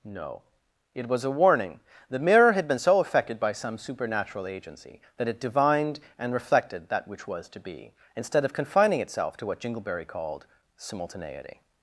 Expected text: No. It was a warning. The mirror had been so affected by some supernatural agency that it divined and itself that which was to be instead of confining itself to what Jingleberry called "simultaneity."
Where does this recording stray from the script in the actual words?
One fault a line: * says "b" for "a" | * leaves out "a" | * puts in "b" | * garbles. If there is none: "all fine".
* says "reflected" for "itself"